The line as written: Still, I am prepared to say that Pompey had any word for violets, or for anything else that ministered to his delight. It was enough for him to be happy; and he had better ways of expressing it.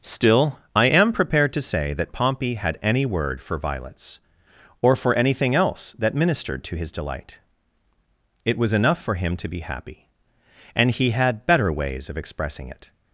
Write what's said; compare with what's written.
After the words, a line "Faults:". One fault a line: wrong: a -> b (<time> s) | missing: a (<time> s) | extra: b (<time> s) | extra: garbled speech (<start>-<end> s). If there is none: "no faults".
Still, I am prepared to say that Pompey had any word for violets, or for anything else that ministered to his delight. It was enough for him to be happy; and he had better ways of expressing it.
Faults:
no faults